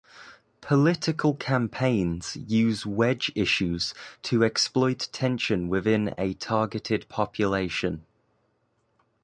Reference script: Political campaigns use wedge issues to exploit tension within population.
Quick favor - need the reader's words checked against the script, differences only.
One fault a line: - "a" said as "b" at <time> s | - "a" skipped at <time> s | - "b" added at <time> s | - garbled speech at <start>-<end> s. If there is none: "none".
- "a targeted" added at 6.2 s